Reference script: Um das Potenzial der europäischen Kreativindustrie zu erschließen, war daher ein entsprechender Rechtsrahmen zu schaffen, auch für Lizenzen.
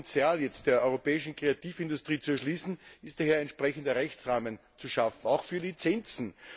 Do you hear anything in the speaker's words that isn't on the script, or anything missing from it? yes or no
yes